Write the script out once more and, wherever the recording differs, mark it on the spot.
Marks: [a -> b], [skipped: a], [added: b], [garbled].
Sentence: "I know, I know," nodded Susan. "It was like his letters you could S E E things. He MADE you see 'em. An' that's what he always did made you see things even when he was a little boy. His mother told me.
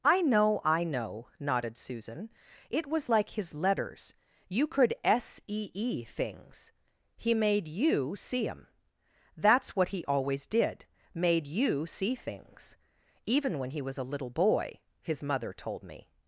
"I know, I know," nodded Susan. "It was like his letters you could S E E things. He MADE you see 'em. [skipped: An'] that's what he always did made you see things even when he was a little boy. His mother told me.